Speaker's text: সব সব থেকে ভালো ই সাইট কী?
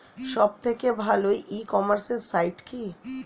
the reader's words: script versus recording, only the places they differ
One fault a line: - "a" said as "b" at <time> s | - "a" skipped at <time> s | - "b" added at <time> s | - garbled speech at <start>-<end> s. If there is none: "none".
- "সব" skipped at 0.5 s
- "কমার্সে" added at 1.7 s